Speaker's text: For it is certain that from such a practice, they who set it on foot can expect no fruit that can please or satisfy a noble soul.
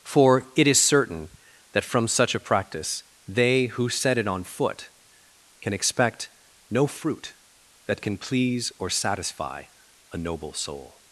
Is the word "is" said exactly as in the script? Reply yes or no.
yes